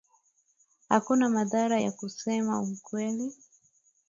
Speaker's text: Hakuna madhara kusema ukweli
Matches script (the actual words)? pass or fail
fail